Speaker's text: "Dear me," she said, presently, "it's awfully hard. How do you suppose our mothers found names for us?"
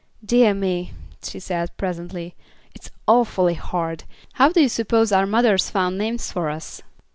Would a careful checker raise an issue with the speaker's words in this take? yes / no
no